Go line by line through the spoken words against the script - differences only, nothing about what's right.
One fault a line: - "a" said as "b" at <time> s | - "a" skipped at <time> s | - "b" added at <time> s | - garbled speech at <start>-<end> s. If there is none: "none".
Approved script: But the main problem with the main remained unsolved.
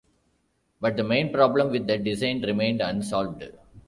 - "main" said as "design" at 2.0 s